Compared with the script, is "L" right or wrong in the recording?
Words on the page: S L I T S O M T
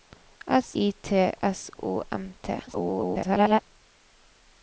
wrong